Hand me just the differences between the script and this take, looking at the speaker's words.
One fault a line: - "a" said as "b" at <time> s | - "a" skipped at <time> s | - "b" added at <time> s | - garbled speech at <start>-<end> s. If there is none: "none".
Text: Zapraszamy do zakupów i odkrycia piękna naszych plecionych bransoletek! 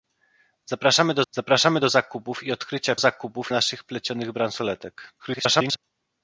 - "zapraszamy do" added at 1.3 s
- "piękna" said as "zakupów" at 3.0 s
- garbled speech at 5.2-5.8 s